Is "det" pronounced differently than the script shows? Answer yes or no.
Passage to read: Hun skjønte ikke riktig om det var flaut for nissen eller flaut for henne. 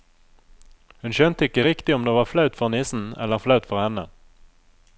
no